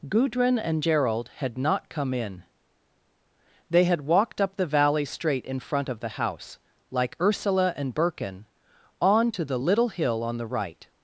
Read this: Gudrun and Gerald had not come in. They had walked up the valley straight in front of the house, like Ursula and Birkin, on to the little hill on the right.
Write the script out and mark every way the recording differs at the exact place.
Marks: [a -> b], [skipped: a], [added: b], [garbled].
Gudrun and Gerald had not come in. They had walked up the valley straight in front of the house, like Ursula and Birkin, on to the little hill on the right.